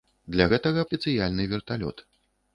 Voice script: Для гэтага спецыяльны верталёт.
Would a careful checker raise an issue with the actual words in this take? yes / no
no